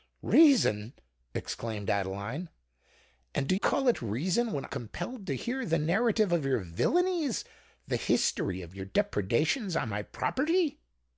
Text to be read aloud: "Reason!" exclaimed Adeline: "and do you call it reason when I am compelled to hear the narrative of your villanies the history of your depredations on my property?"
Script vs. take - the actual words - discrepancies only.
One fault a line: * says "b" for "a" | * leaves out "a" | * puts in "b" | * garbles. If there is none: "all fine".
* leaves out "you"
* leaves out "I am"